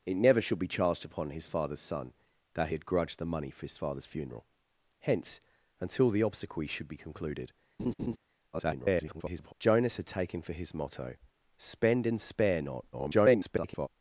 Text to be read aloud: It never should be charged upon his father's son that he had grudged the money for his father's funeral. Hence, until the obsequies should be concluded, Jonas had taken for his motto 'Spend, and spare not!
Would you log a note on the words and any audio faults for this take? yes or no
yes